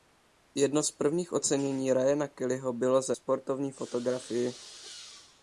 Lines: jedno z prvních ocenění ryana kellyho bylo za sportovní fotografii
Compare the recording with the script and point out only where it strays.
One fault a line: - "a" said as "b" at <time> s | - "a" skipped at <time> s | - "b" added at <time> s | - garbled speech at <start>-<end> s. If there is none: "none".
none